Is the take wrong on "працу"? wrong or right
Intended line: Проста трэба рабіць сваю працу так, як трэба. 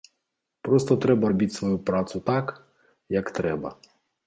right